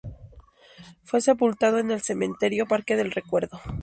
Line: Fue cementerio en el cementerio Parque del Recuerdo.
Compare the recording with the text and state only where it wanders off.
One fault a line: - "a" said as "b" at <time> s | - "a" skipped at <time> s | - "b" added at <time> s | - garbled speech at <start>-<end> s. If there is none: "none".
- "cementerio" said as "sepultado" at 1.2 s